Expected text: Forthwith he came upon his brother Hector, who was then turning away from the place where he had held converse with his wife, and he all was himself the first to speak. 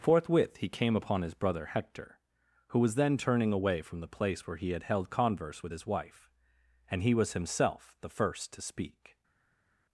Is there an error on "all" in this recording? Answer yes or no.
yes